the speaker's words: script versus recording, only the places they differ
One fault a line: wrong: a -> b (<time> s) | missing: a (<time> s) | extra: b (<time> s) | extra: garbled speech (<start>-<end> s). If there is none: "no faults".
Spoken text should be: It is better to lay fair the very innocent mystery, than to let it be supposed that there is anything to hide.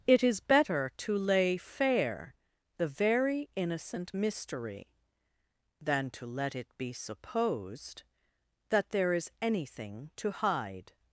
no faults